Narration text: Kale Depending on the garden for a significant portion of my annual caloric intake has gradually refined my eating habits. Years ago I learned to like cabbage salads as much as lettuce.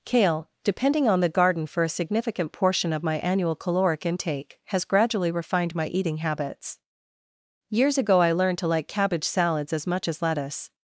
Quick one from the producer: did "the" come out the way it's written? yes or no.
yes